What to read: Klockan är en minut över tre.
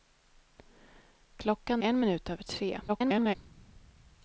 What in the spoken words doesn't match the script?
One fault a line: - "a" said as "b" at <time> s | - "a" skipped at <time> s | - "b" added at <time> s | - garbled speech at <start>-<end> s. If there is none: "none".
- "är" skipped at 1.8 s
- garbled speech at 2.9-3.4 s